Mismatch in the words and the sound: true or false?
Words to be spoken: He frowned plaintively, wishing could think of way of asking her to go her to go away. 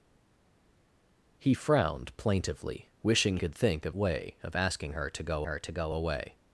false